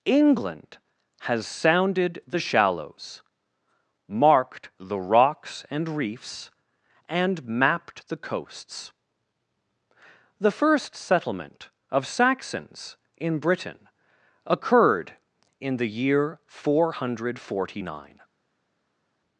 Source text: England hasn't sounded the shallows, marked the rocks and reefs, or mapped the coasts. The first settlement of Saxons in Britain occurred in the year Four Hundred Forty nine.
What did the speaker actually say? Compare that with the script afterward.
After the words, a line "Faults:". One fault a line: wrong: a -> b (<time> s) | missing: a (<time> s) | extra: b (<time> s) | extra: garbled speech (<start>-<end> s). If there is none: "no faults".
England has sounded the shallows, marked the rocks and reefs, and mapped the coasts. The first settlement of Saxons in Britain occurred in the year Four Hundred Forty nine.
Faults:
wrong: hasn't -> has (1.2 s)
wrong: or -> and (7.1 s)